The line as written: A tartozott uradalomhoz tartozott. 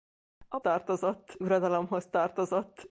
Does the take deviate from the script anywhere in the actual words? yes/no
no